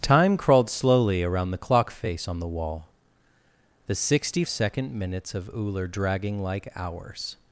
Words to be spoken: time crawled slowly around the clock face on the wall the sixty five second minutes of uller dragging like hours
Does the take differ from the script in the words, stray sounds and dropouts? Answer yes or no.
yes